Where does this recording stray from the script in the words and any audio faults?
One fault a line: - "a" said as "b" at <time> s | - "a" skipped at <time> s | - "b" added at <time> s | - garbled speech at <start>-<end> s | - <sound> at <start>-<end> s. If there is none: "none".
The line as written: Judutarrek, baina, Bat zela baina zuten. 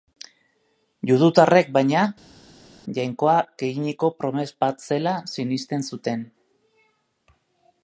- "Jainkoak eginiko promes" added at 3.0 s
- "baina" said as "sinesten" at 5.4 s